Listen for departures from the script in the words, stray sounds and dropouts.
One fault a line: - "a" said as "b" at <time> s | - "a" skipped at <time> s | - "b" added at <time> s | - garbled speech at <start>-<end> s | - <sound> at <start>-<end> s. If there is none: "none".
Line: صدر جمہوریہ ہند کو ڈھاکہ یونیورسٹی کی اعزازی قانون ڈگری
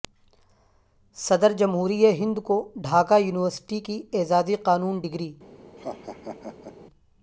- laugh at 5.8-6.8 s